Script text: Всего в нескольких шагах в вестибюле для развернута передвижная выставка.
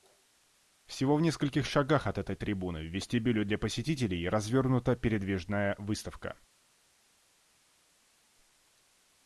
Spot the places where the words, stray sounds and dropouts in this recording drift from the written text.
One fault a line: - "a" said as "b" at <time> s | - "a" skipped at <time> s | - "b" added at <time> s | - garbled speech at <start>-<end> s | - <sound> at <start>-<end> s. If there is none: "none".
- "от этой трибуны" added at 2.1 s
- "посетителей" added at 3.6 s